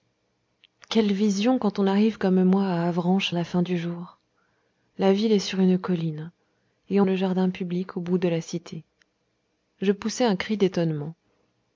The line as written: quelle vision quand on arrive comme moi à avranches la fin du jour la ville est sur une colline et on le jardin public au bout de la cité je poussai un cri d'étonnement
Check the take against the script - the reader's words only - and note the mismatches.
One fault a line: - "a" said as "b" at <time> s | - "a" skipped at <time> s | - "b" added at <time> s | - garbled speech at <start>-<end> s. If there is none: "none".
none